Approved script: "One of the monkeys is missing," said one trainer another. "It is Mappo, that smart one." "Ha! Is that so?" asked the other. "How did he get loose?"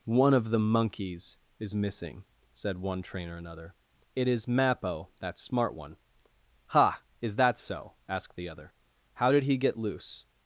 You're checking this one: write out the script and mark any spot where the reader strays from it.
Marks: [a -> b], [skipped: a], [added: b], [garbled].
"One of the monkeys is missing," said one trainer another. "It is Mappo, that smart one." "Ha! Is that so?" asked the other. "How did he get loose?"